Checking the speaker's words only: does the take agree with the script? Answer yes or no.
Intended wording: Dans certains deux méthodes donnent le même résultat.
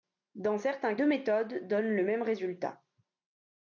yes